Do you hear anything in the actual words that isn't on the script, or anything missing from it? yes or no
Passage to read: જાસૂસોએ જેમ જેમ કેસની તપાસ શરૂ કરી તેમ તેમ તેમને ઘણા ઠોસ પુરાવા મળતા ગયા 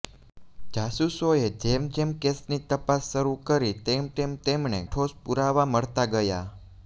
yes